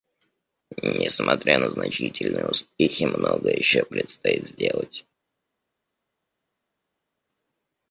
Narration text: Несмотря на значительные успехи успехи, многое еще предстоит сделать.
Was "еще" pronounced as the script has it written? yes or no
yes